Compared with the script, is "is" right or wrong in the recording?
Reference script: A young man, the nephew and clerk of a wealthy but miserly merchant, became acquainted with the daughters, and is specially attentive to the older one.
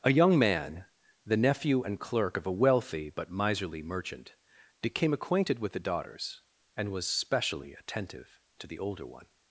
wrong